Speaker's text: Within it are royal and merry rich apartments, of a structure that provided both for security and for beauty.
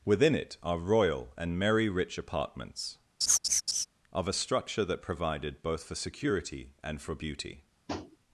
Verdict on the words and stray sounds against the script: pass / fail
fail